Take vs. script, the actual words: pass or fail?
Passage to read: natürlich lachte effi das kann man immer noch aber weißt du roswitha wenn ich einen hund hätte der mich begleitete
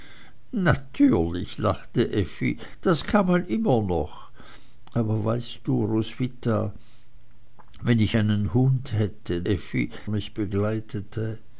fail